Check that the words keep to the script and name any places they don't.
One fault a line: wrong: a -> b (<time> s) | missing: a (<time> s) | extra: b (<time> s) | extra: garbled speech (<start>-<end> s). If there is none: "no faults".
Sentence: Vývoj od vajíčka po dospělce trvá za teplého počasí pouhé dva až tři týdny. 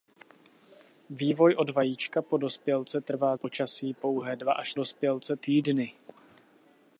missing: za teplého (3.4 s)
wrong: tři -> dospělce (4.7 s)